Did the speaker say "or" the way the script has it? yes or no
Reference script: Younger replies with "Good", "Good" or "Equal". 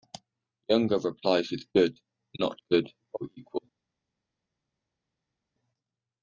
yes